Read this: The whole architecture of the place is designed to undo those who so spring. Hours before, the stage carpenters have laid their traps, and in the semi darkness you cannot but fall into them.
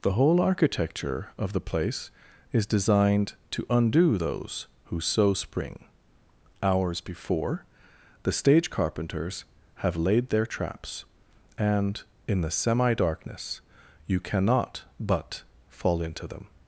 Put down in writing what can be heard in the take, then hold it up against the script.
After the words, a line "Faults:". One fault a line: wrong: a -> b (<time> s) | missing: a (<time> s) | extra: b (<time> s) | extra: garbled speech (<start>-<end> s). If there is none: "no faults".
The whole architecture of the place is designed to undo those who so spring. Hours before, the stage carpenters have laid their traps, and in the semi darkness you cannot but fall into them.
Faults:
no faults